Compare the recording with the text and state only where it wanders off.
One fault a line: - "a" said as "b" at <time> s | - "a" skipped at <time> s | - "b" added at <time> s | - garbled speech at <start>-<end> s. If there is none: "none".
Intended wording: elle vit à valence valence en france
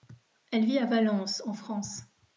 - "valence" skipped at 1.4 s